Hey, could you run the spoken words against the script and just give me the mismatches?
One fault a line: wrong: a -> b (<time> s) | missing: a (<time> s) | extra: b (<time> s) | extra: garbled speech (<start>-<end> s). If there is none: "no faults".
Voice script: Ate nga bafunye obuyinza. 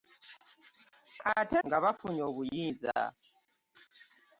no faults